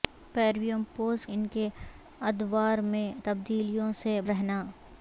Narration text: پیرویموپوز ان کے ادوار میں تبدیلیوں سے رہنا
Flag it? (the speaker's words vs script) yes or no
no